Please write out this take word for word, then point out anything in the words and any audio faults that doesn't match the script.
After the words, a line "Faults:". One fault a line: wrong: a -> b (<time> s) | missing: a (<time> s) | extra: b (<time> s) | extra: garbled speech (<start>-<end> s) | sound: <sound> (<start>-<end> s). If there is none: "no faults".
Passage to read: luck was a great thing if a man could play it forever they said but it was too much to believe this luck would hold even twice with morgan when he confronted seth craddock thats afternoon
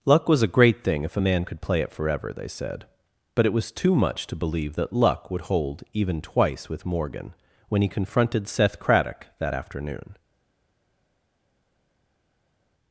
luck was a great thing if a man could play it forever they said but it was too much to believe that luck would hold even twice with morgan when he confronted seth craddock that afternoon
Faults:
wrong: this -> that (4.7 s)
wrong: thats -> that (9.4 s)